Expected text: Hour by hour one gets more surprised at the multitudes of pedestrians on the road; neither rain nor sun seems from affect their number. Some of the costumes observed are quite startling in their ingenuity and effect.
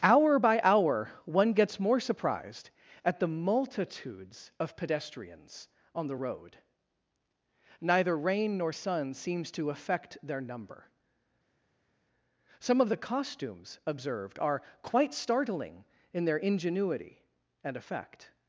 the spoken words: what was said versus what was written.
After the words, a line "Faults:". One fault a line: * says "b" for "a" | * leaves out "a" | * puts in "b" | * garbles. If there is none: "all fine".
Hour by hour one gets more surprised at the multitudes of pedestrians on the road; neither rain nor sun seems to affect their number. Some of the costumes observed are quite startling in their ingenuity and effect.
Faults:
* says "to" for "from"